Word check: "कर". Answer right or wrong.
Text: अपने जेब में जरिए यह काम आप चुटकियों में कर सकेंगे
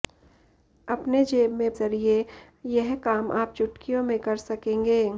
right